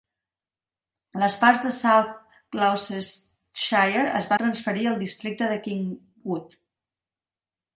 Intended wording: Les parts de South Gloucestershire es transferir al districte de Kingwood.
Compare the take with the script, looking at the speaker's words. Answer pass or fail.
pass